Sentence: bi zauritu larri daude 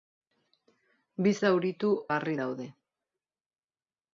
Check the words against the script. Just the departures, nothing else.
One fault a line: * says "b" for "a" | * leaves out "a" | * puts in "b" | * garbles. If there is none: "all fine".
all fine